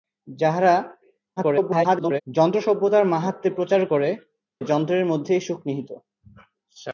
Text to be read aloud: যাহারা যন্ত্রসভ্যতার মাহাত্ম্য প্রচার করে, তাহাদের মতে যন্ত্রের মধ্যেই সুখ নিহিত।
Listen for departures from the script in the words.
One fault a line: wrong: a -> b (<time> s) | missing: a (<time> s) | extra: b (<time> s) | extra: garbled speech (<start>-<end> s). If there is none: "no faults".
extra: garbled speech (1.4-2.2 s)
missing: তাহাদের মতে (4.1 s)